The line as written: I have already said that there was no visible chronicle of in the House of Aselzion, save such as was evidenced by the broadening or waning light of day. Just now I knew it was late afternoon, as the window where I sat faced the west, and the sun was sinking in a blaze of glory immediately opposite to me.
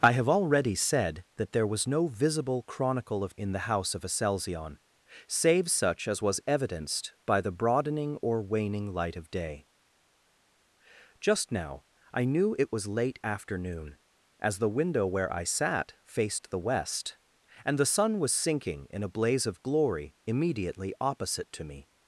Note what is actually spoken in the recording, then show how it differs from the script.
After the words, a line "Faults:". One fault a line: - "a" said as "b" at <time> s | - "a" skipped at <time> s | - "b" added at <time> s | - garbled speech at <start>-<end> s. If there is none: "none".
I have already said that there was no visible chronicle of in the House of Aselzion, save such as was evidenced by the broadening or waning light of day. Just now I knew it was late afternoon, as the window where I sat faced the west, and the sun was sinking in a blaze of glory immediately opposite to me.
Faults:
none